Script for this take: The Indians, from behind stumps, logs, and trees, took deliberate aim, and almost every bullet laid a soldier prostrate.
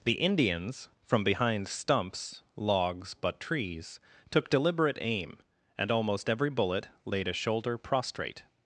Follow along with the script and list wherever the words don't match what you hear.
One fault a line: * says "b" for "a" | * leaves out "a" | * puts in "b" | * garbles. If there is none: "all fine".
* says "but" for "and"
* says "shoulder" for "soldier"